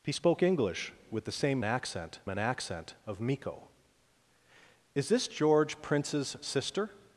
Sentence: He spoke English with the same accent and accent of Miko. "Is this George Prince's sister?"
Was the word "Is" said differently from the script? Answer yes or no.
no